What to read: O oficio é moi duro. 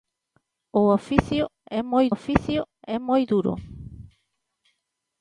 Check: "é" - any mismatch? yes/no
no